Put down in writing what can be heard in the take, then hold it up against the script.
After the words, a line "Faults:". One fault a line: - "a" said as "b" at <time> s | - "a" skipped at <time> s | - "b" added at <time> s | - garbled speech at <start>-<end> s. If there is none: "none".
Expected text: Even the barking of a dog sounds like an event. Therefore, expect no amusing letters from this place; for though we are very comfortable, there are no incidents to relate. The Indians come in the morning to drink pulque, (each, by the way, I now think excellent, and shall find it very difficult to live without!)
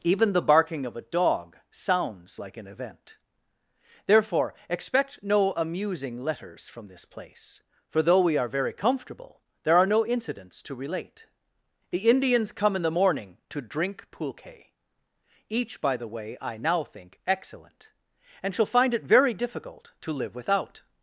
Even the barking of a dog sounds like an event. Therefore, expect no amusing letters from this place; for though we are very comfortable, there are no incidents to relate. The Indians come in the morning to drink pulque, (each, by the way, I now think excellent, and shall find it very difficult to live without!)
Faults:
none